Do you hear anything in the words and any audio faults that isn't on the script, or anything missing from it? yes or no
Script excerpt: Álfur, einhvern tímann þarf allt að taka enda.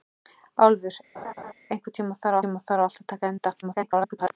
yes